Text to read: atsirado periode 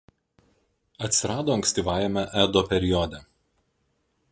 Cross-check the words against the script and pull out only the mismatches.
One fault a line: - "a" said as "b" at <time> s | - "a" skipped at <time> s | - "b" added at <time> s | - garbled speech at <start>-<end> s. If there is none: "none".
- "ankstyvajame edo" added at 1.6 s